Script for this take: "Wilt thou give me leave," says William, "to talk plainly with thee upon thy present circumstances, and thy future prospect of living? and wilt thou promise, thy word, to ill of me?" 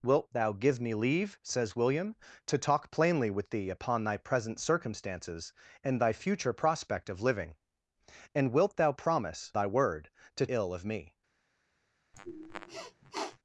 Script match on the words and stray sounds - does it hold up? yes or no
no